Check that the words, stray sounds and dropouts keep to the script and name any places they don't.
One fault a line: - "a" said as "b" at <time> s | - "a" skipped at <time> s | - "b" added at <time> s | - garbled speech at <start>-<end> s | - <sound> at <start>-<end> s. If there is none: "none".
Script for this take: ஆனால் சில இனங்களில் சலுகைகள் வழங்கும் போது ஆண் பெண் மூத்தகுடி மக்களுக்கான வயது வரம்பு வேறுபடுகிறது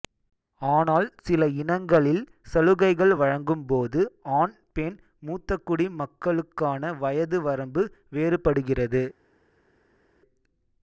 none